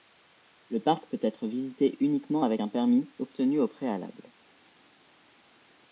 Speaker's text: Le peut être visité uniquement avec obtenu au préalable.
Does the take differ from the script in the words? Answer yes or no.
yes